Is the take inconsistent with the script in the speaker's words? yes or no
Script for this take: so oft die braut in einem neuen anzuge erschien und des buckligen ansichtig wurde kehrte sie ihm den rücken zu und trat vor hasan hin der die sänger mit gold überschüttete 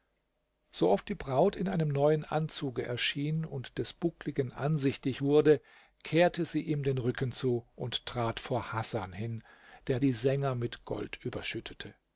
no